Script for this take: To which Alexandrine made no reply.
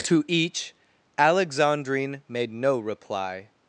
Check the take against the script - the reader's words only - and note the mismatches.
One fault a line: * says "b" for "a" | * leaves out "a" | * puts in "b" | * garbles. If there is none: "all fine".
* says "each" for "which"